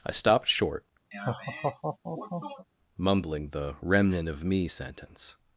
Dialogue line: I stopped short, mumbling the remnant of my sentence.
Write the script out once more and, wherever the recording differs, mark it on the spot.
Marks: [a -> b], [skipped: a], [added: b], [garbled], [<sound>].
I stopped short, [laugh] mumbling the remnant of [my -> me] sentence.